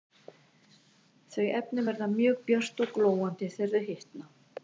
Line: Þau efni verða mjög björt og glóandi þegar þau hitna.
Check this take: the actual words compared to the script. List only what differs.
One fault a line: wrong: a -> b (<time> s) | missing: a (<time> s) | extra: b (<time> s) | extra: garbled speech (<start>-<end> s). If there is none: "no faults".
no faults